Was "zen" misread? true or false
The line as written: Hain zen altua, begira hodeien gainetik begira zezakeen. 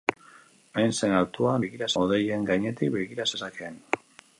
false